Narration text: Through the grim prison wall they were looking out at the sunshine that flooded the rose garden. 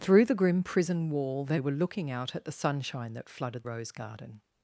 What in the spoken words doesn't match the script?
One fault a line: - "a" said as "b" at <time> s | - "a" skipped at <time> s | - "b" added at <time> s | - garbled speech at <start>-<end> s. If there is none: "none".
- "the" skipped at 3.6 s